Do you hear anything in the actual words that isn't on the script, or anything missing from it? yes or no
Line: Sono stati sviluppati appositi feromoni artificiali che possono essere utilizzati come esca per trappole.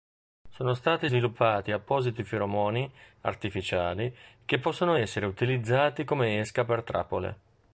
no